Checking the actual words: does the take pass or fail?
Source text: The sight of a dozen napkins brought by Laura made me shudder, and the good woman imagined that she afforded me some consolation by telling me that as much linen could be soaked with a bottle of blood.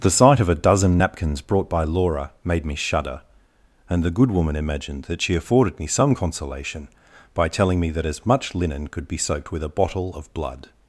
pass